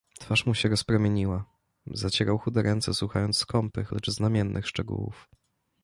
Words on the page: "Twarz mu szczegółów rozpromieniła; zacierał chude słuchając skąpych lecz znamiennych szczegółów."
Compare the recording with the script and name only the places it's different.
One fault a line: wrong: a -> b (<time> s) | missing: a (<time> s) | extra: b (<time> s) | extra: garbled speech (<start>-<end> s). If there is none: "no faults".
wrong: szczegółów -> się (0.5 s)
extra: ręce (2.6 s)